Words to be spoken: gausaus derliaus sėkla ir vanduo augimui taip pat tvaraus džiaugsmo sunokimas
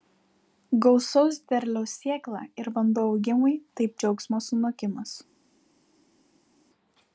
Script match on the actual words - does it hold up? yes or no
no